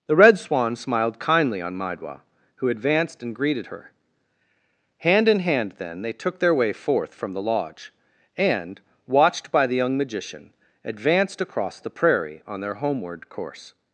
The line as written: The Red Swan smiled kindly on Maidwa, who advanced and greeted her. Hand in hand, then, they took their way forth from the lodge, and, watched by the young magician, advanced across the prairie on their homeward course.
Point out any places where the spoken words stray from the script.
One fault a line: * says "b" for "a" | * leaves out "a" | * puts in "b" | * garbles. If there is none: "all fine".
all fine